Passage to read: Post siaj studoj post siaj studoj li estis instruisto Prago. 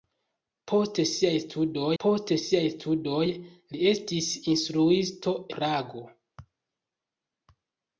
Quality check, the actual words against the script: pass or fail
pass